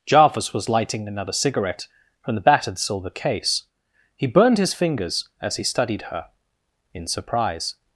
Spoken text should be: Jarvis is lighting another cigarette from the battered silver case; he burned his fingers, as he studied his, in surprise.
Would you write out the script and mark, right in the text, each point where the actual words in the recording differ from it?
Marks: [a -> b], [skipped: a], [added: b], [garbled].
Jarvis [is -> was] lighting another cigarette from the battered silver case; he burned his fingers, as he studied [his, -> her] in surprise.